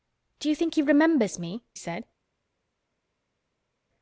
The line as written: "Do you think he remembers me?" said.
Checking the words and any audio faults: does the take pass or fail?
pass